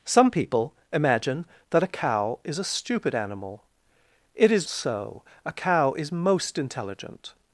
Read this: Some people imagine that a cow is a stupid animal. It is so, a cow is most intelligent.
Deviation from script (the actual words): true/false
false